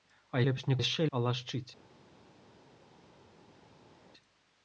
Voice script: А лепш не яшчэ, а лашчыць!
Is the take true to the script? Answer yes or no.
yes